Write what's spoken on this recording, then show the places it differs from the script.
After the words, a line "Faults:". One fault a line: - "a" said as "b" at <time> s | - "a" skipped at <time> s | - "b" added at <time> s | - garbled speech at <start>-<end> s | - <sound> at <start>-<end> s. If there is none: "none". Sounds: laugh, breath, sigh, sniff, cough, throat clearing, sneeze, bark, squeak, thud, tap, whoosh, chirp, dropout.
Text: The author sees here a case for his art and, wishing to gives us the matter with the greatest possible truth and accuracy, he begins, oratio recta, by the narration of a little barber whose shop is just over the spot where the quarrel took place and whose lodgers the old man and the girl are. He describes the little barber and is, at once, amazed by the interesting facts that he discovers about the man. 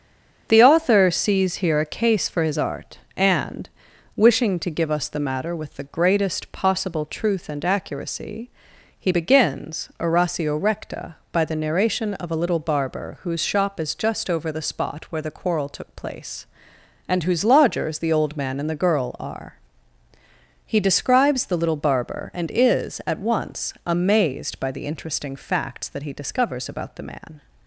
The author sees here a case for his art and, wishing to give us the matter with the greatest possible truth and accuracy, he begins, oratio recta, by the narration of a little barber whose shop is just over the spot where the quarrel took place and whose lodgers the old man and the girl are. He describes the little barber and is, at once, amazed by the interesting facts that he discovers about the man.
Faults:
- "gives" said as "give" at 4.7 s